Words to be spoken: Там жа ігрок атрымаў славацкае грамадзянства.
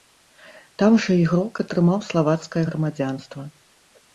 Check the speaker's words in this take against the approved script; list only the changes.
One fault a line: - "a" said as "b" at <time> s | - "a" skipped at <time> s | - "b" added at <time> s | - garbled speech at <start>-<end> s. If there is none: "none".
none